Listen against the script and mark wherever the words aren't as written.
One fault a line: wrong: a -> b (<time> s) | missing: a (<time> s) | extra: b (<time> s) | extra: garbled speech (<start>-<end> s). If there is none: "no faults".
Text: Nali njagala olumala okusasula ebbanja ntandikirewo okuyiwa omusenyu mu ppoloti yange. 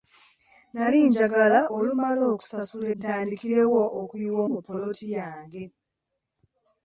missing: ebbanja (2.9 s)
missing: omusenyu (4.4 s)